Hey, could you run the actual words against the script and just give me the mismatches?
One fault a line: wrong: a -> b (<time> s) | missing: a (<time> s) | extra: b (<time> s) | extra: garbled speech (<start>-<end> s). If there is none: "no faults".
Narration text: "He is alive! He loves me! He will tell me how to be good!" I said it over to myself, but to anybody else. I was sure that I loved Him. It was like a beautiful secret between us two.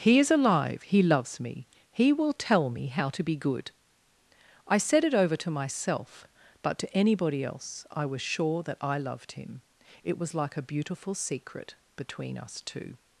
no faults